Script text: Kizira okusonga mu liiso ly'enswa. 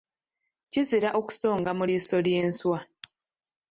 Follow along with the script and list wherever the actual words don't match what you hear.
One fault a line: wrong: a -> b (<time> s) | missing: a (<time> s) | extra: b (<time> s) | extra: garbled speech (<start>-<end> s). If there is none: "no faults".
no faults